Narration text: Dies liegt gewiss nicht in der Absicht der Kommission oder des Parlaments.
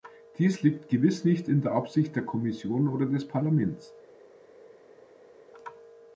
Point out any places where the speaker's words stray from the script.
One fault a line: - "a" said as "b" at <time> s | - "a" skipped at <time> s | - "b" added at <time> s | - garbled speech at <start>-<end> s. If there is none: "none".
none